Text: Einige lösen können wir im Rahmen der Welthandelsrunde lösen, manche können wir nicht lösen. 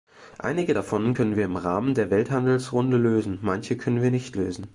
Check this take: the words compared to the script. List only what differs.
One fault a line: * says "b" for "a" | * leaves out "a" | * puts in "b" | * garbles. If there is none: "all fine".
* says "davon" for "lösen"